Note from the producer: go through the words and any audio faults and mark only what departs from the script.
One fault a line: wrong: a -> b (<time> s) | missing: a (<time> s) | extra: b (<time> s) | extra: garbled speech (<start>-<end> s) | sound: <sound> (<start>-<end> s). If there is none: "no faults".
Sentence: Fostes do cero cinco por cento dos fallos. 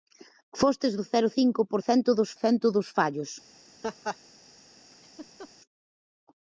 extra: cento dos (2.4 s)
sound: laugh (3.8-4.2 s)
sound: laugh (4.9-5.5 s)